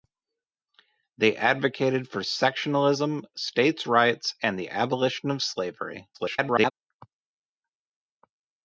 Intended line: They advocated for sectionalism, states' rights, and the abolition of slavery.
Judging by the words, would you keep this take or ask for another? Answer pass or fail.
fail